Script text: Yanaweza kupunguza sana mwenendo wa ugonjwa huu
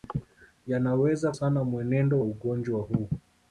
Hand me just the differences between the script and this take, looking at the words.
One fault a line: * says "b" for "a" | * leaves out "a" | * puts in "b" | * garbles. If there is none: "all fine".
* leaves out "kupunguza"
* leaves out "wa"